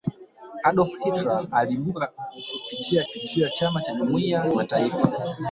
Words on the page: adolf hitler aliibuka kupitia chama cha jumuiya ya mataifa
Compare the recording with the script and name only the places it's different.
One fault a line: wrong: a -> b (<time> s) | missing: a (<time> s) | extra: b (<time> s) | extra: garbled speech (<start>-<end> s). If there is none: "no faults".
extra: kupitia (3.1 s)
missing: ya (4.4 s)